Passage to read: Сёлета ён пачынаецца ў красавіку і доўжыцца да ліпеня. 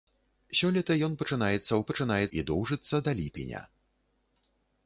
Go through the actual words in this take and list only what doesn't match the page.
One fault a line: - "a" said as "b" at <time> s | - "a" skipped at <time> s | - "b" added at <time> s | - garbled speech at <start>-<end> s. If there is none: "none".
- "красавіку" said as "пачынаецца" at 1.9 s